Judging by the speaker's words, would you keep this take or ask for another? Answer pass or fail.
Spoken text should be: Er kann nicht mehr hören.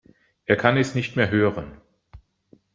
fail